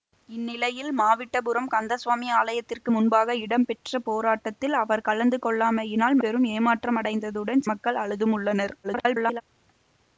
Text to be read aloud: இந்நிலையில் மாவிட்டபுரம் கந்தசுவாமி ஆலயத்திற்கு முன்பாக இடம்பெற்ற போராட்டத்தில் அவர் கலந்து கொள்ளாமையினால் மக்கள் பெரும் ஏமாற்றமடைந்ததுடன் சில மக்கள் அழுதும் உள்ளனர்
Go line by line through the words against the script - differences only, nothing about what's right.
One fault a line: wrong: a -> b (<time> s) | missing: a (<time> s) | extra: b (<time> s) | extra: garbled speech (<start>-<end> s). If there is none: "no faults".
missing: மக்கள் (6.2 s)
missing: சில (7.6 s)
extra: garbled speech (8.8-9.4 s)